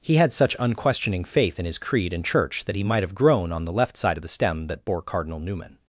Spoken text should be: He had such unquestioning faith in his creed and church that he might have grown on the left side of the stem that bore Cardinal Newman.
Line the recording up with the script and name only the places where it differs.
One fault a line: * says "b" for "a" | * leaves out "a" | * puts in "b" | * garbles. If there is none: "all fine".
all fine